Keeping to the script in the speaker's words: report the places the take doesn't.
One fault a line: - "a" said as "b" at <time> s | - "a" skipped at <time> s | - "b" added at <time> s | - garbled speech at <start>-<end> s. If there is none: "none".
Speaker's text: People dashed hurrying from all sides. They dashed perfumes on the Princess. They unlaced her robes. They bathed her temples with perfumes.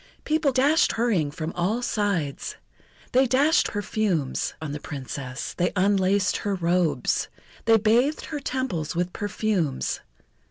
none